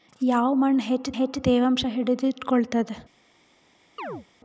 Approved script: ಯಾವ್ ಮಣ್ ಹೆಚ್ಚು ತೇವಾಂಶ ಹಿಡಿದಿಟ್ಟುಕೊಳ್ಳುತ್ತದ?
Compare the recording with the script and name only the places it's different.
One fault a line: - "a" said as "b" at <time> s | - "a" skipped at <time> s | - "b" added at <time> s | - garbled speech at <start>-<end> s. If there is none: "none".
- "ಹೆಚ್ಚು" added at 1.1 s